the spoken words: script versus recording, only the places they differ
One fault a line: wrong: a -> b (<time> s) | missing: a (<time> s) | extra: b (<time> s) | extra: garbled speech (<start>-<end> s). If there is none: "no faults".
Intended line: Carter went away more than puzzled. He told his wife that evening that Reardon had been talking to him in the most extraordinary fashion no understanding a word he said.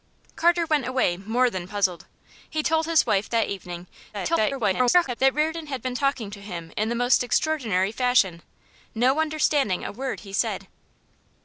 extra: garbled speech (4.1-5.2 s)